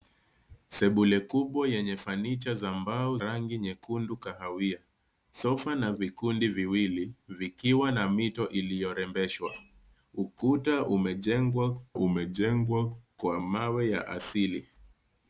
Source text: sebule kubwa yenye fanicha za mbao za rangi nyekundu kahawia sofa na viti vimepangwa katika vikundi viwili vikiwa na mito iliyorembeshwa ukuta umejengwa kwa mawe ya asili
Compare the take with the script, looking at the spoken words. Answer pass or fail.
fail